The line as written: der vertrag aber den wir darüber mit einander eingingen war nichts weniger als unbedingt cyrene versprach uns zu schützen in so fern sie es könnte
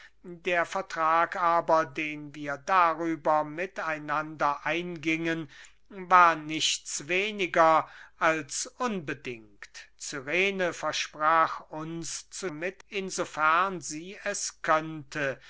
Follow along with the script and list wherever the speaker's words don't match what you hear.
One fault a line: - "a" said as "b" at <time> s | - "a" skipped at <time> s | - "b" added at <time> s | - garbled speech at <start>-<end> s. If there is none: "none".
- "schützen" said as "mit" at 12.5 s